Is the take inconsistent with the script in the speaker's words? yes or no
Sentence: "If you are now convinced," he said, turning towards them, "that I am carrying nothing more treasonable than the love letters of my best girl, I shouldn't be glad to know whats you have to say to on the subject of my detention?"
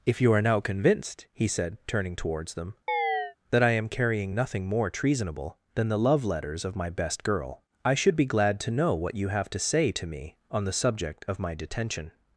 yes